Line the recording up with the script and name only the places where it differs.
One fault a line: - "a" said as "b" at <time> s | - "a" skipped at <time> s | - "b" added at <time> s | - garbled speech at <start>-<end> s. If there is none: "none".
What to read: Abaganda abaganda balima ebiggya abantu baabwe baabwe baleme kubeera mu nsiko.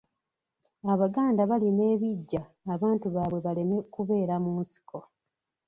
- "abaganda" skipped at 1.4 s
- "baabwe" skipped at 3.4 s